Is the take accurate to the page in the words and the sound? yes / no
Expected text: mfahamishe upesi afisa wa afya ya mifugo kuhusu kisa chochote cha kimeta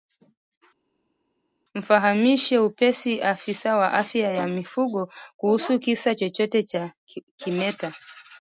yes